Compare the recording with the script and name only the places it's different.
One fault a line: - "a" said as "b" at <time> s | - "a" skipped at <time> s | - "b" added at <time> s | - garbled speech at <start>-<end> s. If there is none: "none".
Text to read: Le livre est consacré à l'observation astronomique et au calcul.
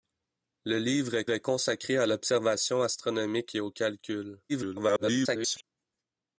- "est" added at 1.3 s
- garbled speech at 4.5-5.6 s